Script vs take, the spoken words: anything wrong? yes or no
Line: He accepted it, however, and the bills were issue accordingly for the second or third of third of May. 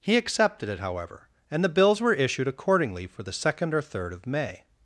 yes